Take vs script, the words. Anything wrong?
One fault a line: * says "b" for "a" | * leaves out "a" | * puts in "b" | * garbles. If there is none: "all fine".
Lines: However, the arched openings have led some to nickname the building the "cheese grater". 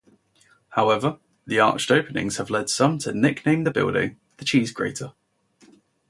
all fine